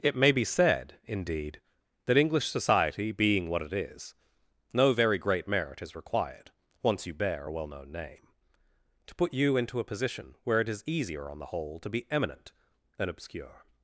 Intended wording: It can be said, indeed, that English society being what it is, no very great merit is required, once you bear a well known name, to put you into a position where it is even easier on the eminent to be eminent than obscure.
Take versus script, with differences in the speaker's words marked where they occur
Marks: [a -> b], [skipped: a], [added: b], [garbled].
It [can -> may] be said, indeed, that English society being what it is, no very great merit is required, once you bear a well known name, to put you into a position where it is [skipped: even] easier on the [eminent -> whole] to be eminent than obscure.